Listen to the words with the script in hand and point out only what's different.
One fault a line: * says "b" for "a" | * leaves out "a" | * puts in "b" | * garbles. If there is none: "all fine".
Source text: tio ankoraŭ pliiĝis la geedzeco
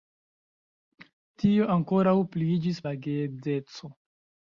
all fine